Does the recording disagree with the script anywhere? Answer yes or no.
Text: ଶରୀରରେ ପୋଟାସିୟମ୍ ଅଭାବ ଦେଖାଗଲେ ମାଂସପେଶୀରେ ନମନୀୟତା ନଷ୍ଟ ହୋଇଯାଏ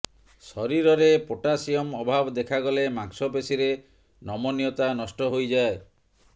no